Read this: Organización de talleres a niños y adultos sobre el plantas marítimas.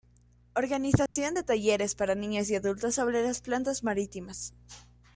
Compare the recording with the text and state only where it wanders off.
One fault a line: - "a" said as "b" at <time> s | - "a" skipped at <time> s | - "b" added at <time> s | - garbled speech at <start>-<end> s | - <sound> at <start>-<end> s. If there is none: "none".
- dropout at 1.1-1.2 s
- "a" said as "para" at 1.9 s
- "el" said as "las" at 3.2 s